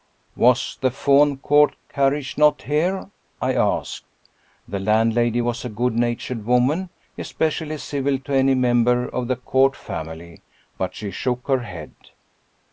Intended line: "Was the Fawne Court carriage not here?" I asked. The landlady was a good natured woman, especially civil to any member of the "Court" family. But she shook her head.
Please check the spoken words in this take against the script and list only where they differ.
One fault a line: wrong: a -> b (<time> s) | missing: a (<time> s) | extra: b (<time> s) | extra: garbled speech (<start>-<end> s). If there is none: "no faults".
no faults